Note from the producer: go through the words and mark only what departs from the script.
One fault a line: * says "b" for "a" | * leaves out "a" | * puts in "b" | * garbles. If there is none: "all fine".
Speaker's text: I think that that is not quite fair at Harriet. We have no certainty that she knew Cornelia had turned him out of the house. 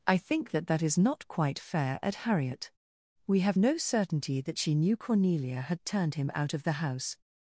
all fine